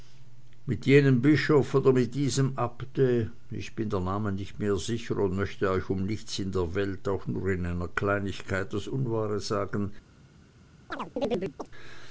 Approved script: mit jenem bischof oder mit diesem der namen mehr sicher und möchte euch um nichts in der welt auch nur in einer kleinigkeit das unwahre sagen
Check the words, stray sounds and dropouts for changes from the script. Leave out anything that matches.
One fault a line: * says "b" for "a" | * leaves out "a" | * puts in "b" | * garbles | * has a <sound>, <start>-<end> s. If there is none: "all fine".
* puts in "abte ich bin"
* puts in "nicht"
* has a chirp, 10.9-11.7 s